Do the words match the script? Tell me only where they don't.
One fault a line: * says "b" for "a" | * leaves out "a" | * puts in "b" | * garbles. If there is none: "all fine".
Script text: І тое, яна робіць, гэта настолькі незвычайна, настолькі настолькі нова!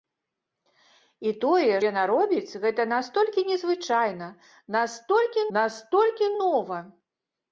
all fine